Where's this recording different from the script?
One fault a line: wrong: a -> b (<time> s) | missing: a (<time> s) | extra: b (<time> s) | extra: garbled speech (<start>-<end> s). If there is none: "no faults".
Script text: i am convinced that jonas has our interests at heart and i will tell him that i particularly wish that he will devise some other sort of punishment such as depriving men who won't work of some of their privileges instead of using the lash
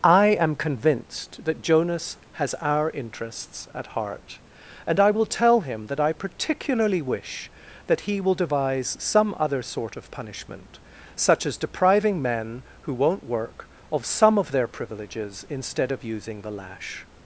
no faults